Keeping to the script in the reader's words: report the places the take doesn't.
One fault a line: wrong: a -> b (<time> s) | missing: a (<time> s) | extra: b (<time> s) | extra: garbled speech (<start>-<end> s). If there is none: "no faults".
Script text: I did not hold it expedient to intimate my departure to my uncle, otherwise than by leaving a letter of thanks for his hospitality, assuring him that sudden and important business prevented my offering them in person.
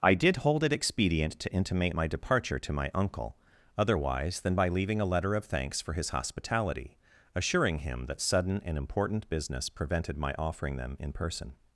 missing: not (0.4 s)